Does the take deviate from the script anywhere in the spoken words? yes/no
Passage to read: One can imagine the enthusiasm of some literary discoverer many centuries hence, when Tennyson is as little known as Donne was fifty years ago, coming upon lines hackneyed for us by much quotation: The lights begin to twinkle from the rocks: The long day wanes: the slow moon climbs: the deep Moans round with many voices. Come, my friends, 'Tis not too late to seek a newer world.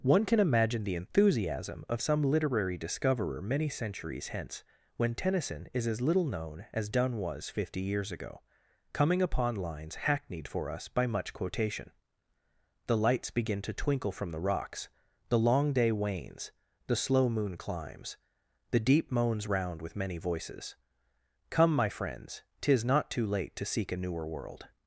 no